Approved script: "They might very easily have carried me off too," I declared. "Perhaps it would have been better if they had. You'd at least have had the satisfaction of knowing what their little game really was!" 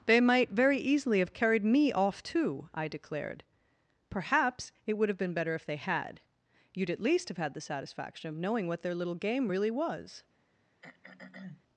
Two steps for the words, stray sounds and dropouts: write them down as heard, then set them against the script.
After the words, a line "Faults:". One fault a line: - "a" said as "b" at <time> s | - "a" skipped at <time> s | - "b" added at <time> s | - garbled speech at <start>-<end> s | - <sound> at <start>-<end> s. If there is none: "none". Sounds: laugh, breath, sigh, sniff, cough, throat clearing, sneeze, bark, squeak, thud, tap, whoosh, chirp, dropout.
"They might very easily have carried me off too," I declared. "Perhaps it would have been better if they had. You'd at least have had the satisfaction of knowing what their little game really was!"
Faults:
- throat clearing at 10.8-11.6 s